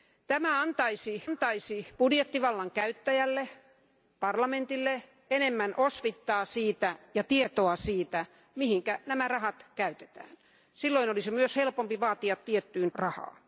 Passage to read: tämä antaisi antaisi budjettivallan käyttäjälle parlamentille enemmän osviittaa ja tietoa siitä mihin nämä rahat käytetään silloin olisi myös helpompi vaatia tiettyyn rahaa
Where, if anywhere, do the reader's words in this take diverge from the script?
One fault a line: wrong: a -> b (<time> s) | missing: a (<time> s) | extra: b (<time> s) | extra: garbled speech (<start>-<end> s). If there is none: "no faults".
no faults